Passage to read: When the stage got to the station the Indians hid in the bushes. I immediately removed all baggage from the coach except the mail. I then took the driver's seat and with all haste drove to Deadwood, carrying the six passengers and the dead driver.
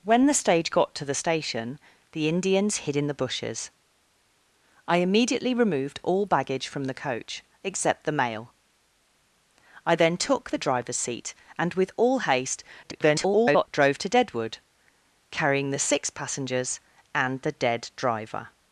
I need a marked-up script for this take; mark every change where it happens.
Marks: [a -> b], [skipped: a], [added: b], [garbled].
When the stage got to the station the Indians hid in the bushes. I immediately removed all baggage from the coach except the mail. I then took the driver's seat and with all haste [garbled] drove to Deadwood, carrying the six passengers and the dead driver.